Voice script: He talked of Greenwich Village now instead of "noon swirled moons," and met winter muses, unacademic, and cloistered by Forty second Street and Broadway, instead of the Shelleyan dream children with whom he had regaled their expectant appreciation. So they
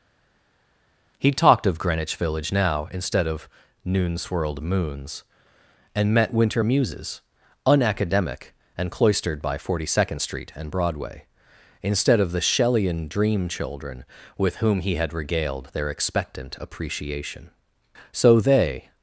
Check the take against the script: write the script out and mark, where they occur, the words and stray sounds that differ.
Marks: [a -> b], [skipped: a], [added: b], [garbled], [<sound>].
He talked of Greenwich Village now instead of "noon swirled moons," and met winter muses, unacademic, and cloistered by Forty second Street and Broadway, instead of the Shelleyan dream children with whom he had regaled their expectant appreciation. So they